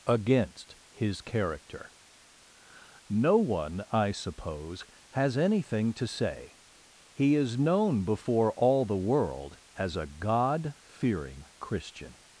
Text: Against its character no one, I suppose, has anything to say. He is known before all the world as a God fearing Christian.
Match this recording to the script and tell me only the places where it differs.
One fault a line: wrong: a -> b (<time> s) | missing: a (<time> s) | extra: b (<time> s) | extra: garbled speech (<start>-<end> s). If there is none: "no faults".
wrong: its -> his (0.9 s)